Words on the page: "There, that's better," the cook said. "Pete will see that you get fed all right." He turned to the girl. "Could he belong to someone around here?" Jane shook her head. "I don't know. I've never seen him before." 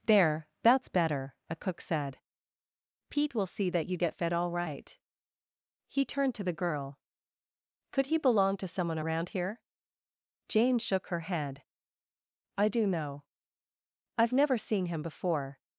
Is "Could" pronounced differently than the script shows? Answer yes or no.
no